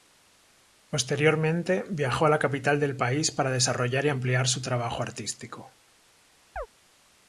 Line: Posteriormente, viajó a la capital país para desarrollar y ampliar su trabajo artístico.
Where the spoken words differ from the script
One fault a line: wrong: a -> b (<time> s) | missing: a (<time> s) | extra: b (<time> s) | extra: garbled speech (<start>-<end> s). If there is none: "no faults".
extra: del (2.8 s)